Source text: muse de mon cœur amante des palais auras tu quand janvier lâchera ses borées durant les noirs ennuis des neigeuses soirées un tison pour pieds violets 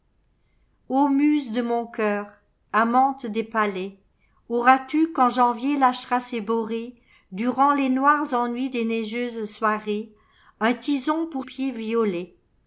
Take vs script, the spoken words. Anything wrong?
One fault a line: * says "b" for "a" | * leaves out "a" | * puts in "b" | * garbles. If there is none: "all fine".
all fine